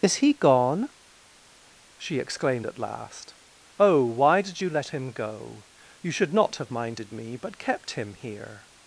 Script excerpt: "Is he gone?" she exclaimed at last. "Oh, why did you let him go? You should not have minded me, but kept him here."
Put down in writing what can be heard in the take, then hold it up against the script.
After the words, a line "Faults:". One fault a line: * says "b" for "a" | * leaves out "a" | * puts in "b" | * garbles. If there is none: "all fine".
"Is he gone?" she exclaimed at last. "Oh, why did you let him go? You should not have minded me, but kept him here."
Faults:
all fine